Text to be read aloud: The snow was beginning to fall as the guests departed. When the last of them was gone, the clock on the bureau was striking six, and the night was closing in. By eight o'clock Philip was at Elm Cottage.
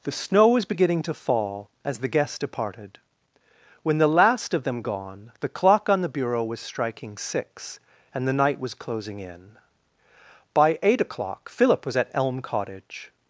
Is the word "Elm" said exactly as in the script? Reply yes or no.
yes